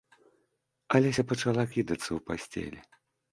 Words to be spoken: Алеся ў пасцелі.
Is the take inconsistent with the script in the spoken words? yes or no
yes